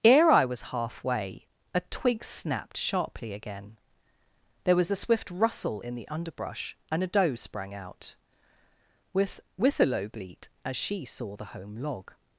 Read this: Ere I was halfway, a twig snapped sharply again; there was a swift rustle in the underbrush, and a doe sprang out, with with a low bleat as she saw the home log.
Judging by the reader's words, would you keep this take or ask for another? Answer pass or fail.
pass